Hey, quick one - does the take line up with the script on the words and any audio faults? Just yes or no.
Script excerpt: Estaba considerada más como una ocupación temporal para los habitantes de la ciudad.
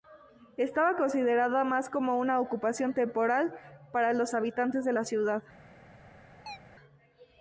no